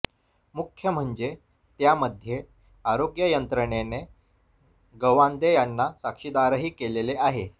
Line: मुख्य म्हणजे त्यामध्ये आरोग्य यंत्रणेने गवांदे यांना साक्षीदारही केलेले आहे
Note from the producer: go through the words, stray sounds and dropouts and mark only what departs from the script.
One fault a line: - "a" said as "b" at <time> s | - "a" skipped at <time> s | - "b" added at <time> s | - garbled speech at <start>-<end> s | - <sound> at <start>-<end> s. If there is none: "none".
none